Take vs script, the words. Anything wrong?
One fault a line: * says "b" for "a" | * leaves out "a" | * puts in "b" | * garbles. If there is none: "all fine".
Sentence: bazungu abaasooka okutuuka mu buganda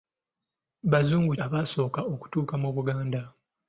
all fine